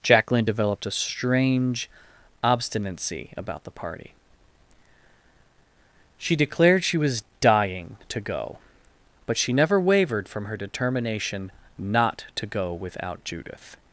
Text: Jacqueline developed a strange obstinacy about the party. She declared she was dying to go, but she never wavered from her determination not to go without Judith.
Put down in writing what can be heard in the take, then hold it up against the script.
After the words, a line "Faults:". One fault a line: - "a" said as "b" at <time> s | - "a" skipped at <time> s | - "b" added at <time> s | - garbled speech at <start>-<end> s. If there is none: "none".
Jacqueline developed a strange obstinacy about the party. She declared she was dying to go, but she never wavered from her determination not to go without Judith.
Faults:
none